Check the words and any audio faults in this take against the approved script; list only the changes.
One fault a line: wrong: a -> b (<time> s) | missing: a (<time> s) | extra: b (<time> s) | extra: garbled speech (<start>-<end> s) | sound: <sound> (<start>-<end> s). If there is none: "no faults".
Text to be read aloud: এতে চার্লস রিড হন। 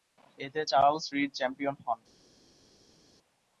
extra: চ্যাম্পিয়ন (1.3 s)